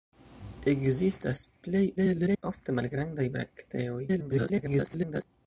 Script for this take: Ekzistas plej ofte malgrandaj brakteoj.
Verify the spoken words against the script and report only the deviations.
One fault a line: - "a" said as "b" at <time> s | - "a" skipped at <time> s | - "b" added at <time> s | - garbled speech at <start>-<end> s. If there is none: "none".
- garbled speech at 2.0-2.4 s
- garbled speech at 4.1-5.2 s